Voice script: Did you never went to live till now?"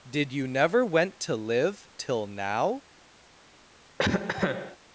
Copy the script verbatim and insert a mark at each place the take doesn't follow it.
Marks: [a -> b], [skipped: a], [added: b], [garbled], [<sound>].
Did you never went to live till now?" [cough]